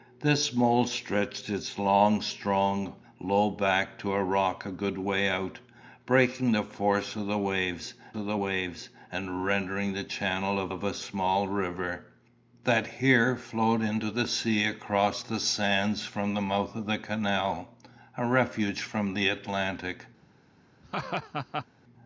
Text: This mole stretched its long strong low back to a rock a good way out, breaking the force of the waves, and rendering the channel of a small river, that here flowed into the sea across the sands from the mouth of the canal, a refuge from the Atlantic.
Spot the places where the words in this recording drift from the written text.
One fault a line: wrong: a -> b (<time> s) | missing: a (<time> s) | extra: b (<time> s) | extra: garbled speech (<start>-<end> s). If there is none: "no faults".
extra: of the waves (8.1 s)
extra: of (10.7 s)